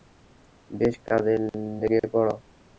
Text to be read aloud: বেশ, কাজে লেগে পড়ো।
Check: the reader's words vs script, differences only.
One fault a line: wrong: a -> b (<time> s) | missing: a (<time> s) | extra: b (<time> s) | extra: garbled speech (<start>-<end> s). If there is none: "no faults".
no faults